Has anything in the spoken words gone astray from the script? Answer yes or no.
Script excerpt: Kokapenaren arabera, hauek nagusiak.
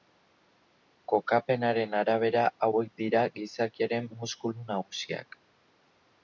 yes